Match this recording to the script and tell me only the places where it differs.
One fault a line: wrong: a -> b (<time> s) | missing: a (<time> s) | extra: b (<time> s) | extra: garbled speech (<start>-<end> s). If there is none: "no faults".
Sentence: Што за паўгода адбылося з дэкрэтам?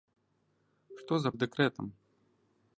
missing: паўгода адбылося (1.3 s)